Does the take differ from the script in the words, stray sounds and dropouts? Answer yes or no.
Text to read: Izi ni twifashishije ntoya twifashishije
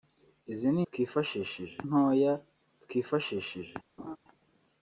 yes